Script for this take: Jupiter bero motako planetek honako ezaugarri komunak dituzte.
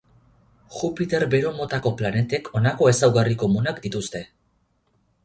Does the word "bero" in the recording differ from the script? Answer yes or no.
no